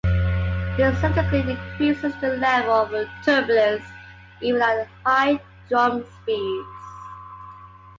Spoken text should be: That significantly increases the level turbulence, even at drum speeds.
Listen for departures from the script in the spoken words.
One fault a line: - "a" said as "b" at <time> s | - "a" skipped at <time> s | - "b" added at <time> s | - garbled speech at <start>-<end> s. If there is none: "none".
- "That" said as "This" at 0.8 s
- "of" added at 2.7 s
- "high" added at 5.0 s